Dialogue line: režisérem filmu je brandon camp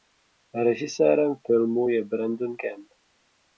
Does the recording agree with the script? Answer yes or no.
yes